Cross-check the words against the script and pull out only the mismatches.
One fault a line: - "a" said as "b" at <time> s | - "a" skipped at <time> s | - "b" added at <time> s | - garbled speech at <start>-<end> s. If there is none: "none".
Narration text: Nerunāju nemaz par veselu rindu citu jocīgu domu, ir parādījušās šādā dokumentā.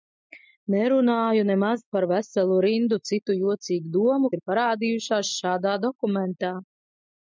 none